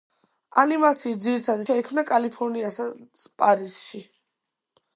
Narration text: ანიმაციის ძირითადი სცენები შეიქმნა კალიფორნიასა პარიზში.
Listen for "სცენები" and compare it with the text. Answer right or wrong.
wrong